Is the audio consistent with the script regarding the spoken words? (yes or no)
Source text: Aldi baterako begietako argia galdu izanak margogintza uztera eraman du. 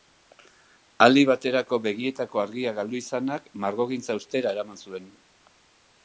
no